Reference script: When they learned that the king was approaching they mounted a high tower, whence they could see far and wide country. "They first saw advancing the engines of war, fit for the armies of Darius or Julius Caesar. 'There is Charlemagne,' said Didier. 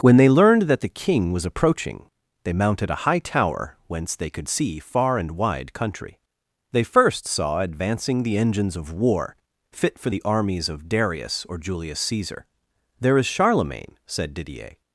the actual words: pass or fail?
pass